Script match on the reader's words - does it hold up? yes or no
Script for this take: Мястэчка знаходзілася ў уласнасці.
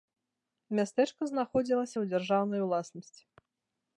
no